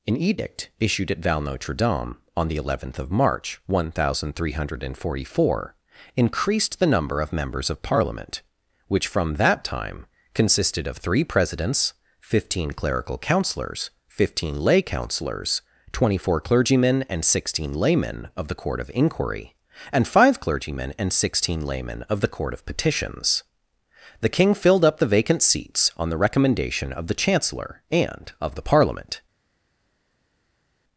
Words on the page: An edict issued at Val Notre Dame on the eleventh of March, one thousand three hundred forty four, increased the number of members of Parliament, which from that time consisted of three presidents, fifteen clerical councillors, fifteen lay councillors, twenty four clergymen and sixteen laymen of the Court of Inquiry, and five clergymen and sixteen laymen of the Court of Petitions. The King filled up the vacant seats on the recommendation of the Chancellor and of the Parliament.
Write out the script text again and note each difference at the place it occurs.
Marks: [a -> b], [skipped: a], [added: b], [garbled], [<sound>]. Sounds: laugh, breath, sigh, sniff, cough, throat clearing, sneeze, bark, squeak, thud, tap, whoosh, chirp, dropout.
An edict issued at Val Notre Dame on the eleventh of March, one thousand three hundred forty four, increased the number of members of Parliament, which from that time consisted of three presidents, fifteen clerical councillors, fifteen lay councillors, twenty four clergymen and sixteen laymen of the Court of Inquiry, and five clergymen and sixteen laymen of the Court of Petitions. The King filled up the vacant seats on the recommendation of the Chancellor and of the Parliament.